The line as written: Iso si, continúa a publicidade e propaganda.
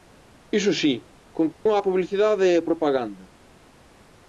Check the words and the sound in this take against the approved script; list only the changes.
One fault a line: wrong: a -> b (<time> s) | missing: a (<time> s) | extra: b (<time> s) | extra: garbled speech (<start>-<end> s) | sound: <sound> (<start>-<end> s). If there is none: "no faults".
sound: dropout (1.5-1.7 s)
extra: a (2.6 s)